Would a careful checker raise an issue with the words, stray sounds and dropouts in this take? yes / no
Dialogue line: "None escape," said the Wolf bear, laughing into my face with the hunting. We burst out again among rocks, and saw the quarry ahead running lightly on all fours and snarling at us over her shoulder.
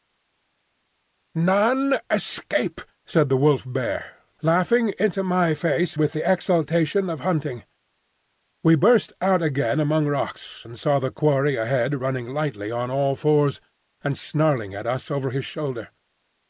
yes